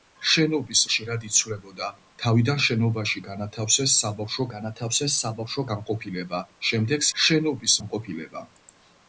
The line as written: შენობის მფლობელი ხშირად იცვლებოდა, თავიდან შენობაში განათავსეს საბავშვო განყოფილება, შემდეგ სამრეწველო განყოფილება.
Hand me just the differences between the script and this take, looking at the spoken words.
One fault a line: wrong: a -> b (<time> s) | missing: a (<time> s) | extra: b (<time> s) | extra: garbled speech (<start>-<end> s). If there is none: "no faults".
missing: მფლობელი (0.8 s)
extra: განათავსეს საბავშვო (4.6 s)
wrong: სამრეწველო -> შენობის (7.2 s)